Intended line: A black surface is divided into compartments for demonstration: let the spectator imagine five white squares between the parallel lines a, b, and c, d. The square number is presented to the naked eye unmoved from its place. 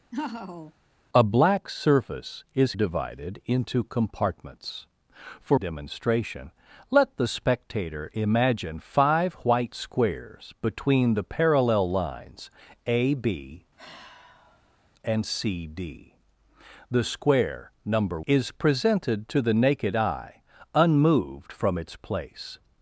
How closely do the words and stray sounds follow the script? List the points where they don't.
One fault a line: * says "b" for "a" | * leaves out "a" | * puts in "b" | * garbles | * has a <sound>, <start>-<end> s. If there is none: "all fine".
* has a laugh, 0.1-0.7 s
* has a sigh, 13.8-14.9 s